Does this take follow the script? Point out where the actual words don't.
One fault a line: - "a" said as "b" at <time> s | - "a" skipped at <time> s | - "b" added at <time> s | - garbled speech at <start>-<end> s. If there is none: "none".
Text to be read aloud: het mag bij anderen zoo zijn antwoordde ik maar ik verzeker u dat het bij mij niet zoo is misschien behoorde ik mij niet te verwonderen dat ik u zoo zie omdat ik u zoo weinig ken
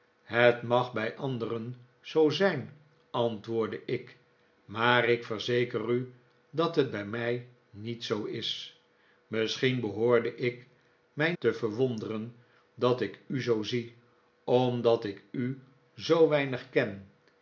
- "niet" skipped at 11.3 s